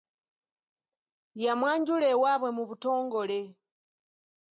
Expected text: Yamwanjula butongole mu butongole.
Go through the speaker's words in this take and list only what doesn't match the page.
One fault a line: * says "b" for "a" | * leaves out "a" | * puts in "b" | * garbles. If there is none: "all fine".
* says "ewaabwe" for "butongole"